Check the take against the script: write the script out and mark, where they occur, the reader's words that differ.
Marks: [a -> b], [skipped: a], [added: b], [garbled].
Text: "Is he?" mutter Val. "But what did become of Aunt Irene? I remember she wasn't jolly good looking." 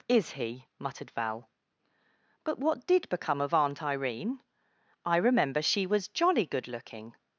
"Is he?" [mutter -> muttered] Val. "But what did become of Aunt Irene? I remember she [wasn't -> was] jolly good looking."